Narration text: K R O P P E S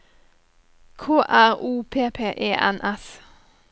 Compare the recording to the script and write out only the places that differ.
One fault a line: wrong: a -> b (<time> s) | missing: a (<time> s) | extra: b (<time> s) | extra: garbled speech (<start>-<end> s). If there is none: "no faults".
extra: N (2.5 s)